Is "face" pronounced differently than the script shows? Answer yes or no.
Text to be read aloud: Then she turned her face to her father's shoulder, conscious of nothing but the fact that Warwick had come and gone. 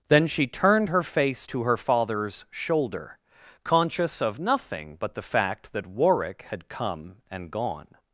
no